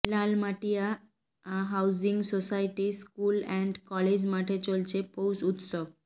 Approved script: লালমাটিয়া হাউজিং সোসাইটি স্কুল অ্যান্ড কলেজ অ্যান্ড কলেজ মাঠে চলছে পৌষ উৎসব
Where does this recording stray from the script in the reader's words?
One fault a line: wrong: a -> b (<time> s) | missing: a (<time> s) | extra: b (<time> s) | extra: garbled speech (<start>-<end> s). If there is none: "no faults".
missing: অ্যান্ড কলেজ (4.2 s)